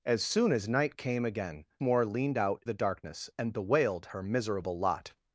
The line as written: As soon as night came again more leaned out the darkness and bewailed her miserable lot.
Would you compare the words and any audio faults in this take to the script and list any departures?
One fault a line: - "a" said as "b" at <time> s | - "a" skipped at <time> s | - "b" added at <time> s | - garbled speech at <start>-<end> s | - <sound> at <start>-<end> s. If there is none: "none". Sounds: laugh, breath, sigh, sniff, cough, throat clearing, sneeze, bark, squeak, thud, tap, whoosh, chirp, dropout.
none